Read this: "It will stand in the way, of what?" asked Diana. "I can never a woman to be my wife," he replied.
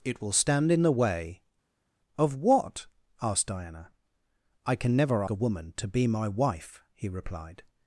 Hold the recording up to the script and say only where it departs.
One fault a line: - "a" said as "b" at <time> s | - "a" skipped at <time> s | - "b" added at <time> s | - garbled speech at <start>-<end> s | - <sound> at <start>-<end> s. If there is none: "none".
none